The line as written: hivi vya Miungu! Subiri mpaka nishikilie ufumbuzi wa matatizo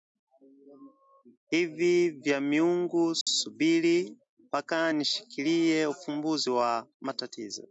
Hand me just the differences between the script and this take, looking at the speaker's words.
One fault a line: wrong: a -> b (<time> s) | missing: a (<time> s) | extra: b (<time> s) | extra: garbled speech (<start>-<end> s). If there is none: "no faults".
no faults